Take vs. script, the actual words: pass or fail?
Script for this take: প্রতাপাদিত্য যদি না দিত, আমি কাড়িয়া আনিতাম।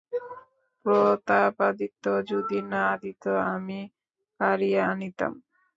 pass